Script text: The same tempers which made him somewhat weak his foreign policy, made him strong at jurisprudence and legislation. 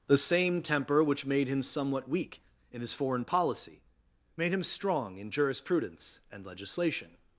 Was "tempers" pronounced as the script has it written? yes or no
no